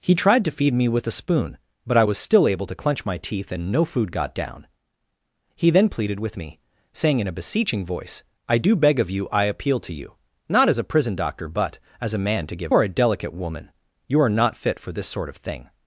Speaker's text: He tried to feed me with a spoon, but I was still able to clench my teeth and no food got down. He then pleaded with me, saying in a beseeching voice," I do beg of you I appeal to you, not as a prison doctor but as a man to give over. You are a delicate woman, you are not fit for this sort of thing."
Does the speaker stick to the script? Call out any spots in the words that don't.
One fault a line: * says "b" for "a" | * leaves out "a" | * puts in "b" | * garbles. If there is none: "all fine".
* leaves out "over You"